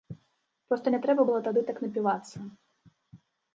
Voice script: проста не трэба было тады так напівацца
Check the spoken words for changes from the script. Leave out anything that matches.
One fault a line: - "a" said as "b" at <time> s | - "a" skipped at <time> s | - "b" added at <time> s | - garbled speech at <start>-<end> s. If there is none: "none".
none